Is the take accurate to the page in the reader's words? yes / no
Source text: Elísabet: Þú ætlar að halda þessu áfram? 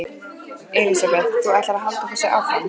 yes